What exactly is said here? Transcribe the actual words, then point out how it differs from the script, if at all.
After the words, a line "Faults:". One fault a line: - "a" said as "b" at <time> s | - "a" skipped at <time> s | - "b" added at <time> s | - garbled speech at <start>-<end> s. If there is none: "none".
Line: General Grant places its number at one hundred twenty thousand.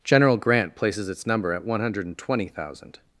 General Grant places its number at one hundred twenty thousand.
Faults:
none